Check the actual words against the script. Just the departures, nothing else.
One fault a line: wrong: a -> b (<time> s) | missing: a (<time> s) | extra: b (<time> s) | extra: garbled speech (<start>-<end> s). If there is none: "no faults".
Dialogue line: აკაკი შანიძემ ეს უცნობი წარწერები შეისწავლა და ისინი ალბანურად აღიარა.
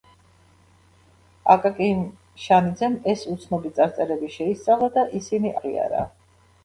missing: ალბანურად (5.5 s)